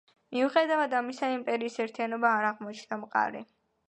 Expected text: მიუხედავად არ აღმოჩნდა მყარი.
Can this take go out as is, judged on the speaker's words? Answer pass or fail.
fail